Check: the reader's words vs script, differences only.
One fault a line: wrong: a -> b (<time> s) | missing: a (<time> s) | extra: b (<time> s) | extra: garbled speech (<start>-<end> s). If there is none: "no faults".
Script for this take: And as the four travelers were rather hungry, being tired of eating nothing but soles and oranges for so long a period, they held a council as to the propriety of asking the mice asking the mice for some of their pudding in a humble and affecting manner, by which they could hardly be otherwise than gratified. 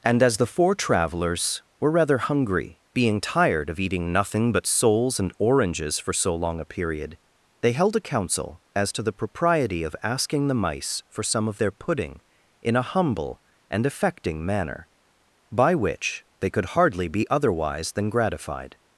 missing: asking the mice (11.0 s)